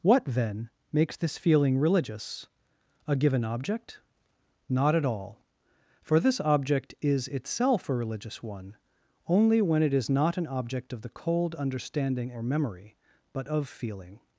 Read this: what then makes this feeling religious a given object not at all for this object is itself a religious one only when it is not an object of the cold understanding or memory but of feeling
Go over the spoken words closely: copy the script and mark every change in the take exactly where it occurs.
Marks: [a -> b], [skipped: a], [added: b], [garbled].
what then makes this feeling religious a given object not at all for this object is itself a religious one only when it is not an object of the cold understanding or memory but of feeling